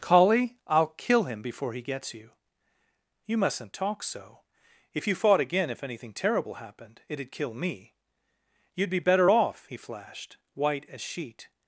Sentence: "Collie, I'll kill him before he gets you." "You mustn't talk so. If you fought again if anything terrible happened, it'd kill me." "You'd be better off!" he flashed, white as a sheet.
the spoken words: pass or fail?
fail